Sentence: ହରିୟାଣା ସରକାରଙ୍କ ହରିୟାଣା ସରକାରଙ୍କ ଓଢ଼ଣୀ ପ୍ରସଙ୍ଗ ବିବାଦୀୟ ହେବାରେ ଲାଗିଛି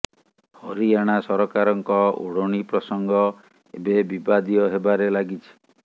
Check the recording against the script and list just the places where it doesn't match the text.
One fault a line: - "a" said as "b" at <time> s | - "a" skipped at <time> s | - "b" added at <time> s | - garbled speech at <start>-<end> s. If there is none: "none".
- "ହରିୟାଣା ସରକାରଙ୍କ" skipped at 2.0 s
- "ଏବେ" added at 3.7 s